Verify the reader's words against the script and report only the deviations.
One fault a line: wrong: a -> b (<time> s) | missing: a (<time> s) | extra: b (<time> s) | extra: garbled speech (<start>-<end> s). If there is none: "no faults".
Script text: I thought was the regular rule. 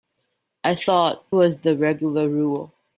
no faults